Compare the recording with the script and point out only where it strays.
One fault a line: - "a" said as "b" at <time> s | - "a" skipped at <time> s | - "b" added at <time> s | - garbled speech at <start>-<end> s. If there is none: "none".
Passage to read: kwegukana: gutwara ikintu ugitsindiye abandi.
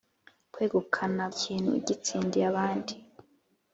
- "gutwara" skipped at 1.2 s